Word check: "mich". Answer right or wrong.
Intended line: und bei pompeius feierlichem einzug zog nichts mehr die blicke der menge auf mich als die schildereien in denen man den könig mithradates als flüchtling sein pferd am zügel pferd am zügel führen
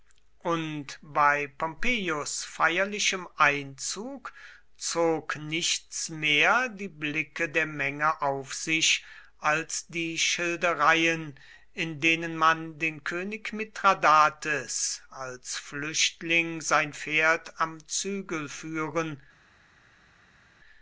wrong